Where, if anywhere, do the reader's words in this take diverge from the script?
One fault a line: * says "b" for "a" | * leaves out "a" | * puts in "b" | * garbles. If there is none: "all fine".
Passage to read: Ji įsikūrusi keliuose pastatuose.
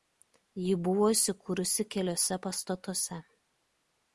* puts in "buvo"